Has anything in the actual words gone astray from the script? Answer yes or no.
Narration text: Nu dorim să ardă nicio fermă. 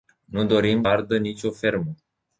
yes